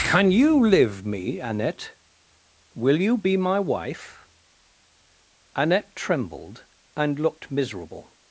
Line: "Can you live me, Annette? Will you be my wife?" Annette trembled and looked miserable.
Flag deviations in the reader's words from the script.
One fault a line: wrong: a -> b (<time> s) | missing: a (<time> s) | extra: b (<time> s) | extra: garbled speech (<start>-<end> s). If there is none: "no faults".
no faults